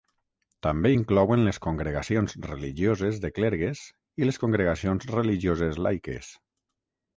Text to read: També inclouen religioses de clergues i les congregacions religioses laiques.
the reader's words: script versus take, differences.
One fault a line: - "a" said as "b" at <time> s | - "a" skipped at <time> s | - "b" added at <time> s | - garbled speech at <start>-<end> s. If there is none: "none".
- "les congregacions" added at 1.5 s